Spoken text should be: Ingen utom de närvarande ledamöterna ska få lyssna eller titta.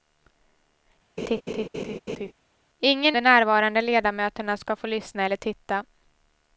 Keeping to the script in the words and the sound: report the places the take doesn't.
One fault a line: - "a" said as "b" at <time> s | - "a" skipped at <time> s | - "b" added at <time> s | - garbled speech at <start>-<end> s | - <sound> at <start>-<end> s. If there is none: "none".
- laugh at 1.2-2.3 s
- "utom" skipped at 3.2 s